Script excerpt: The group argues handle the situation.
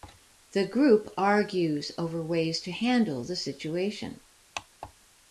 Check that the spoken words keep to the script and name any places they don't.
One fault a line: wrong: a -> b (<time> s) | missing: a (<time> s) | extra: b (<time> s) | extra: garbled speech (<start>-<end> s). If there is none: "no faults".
extra: over ways to (1.9 s)